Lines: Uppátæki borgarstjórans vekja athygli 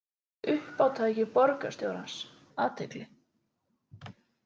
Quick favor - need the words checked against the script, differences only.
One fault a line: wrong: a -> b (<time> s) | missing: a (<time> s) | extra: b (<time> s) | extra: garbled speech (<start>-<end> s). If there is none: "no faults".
missing: vekja (2.1 s)